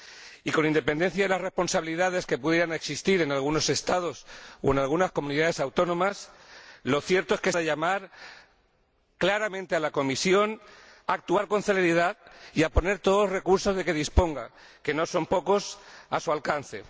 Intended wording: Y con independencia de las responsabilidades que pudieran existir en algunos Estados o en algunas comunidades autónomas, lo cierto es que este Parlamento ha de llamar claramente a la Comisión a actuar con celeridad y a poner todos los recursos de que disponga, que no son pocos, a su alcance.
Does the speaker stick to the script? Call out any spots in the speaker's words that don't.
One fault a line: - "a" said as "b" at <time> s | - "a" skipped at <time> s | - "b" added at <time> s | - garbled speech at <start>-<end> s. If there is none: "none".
- "este Parlamento" skipped at 7.5 s